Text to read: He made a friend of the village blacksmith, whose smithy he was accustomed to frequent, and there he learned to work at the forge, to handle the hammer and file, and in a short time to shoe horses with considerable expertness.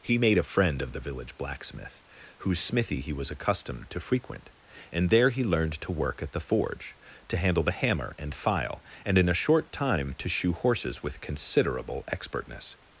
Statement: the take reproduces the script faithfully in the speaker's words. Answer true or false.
true